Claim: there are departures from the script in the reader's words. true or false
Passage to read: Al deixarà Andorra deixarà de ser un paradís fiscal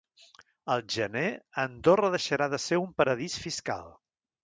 true